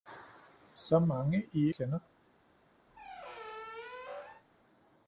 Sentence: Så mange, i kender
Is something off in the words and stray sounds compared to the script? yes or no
yes